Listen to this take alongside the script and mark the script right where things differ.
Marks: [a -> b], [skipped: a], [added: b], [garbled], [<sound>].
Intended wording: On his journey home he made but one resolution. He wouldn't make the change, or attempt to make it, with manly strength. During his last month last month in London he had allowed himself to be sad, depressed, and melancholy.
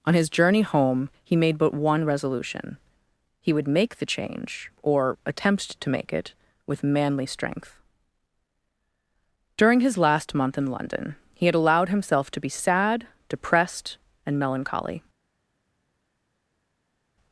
On his journey home he made but one resolution. He [wouldn't -> would] make the change, or attempt to make it, with manly strength. During his last month [skipped: last month] in London he had allowed himself to be sad, depressed, and melancholy.